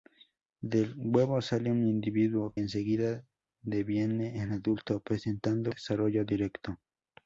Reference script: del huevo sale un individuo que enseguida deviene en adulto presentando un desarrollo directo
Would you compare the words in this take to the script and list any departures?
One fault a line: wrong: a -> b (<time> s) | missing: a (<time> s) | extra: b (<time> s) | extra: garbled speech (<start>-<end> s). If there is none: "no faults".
missing: que (2.5 s)
missing: un (5.7 s)